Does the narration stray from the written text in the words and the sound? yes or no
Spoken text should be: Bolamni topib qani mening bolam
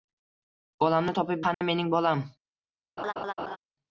yes